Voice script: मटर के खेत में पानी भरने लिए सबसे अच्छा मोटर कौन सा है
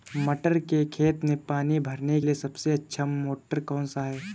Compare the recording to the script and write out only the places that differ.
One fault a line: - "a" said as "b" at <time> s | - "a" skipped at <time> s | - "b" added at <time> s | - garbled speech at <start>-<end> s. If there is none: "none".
none